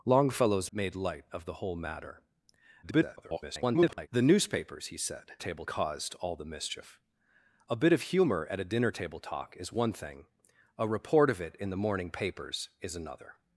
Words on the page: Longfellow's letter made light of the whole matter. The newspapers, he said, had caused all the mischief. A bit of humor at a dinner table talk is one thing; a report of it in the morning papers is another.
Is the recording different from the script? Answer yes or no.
yes